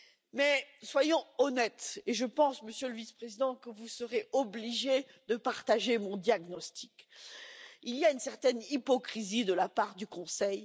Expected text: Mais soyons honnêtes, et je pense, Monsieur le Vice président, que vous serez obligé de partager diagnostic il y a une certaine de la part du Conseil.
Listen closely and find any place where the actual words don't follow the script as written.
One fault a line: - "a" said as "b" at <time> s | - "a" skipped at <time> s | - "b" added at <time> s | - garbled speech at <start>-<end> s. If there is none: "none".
- "mon" added at 6.0 s
- "hypocrisie" added at 8.7 s